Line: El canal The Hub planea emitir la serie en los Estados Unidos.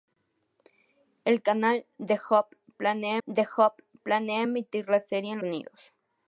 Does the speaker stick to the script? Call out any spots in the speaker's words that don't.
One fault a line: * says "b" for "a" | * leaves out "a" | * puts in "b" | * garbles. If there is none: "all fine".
* puts in "The Hub planea"
* leaves out "los Estados"